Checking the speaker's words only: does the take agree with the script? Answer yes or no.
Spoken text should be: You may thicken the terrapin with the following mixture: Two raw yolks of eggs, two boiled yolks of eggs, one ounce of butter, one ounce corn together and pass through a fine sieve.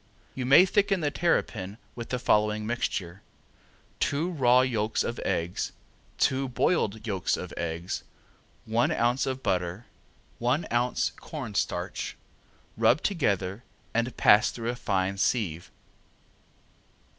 no